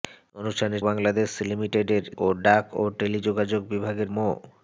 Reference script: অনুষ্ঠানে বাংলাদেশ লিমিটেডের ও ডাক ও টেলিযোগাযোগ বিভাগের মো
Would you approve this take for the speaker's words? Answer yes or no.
yes